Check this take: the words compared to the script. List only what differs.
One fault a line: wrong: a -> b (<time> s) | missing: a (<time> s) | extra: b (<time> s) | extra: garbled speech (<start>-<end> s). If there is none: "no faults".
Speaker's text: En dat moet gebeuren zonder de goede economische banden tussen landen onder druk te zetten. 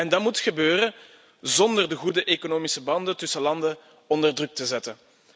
no faults